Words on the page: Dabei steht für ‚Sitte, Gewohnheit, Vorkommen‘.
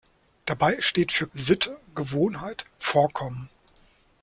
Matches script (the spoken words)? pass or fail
pass